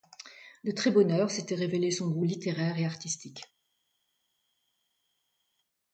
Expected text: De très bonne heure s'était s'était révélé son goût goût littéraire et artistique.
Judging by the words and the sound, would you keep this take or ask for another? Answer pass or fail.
fail